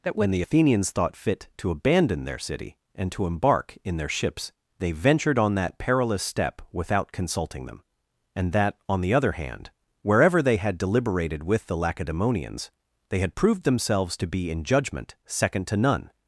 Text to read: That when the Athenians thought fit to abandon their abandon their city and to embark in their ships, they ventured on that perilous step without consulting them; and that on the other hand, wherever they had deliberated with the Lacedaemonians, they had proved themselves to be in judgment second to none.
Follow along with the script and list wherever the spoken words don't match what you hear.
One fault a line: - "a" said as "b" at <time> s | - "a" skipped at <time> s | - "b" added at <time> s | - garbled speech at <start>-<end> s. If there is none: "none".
- "abandon their" skipped at 2.4 s